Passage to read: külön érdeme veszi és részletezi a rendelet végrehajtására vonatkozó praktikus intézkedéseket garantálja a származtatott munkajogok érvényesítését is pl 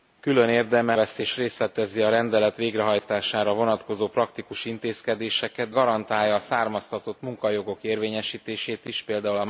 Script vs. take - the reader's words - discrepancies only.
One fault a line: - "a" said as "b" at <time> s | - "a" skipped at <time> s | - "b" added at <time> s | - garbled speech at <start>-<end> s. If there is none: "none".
none